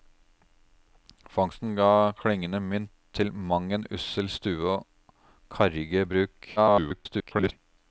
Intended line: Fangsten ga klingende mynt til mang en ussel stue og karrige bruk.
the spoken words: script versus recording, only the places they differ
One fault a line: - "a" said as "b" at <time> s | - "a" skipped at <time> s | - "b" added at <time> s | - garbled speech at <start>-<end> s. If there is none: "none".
- garbled speech at 6.6-7.5 s